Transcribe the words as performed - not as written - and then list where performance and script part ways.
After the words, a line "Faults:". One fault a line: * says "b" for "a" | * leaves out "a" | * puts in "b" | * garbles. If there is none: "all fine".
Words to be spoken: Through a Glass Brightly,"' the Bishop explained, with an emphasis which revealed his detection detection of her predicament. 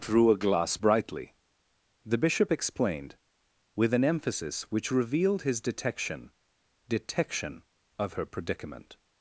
Through a Glass Brightly,"' the Bishop explained, with an emphasis which revealed his detection detection of her predicament.
Faults:
all fine